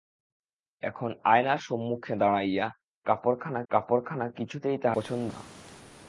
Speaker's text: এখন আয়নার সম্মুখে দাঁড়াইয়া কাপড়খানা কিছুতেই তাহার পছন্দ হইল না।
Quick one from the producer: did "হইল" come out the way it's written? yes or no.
no